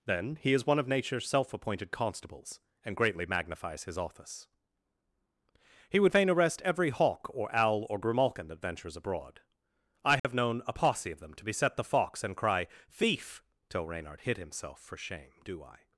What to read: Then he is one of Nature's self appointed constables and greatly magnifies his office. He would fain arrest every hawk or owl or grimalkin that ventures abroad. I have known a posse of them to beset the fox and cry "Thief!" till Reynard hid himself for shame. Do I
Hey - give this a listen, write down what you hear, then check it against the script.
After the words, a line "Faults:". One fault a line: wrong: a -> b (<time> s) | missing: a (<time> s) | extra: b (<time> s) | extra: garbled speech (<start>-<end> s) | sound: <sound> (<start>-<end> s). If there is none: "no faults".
Then he is one of Nature's self appointed constables and greatly magnifies his office. He would fain arrest every hawk or owl or grimalkin that ventures abroad. I have known a posse of them to beset the fox and cry "Thief!" till Reynard hid himself for shame. Do I
Faults:
sound: dropout (10.2-10.2 s)